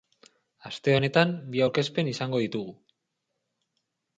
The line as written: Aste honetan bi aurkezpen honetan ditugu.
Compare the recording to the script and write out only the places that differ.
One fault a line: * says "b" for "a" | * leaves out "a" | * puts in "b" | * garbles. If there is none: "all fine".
* says "izango" for "honetan"